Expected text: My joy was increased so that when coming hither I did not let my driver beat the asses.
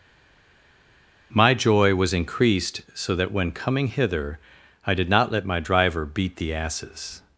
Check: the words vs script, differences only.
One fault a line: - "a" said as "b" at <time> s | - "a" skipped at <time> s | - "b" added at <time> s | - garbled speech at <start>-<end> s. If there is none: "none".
none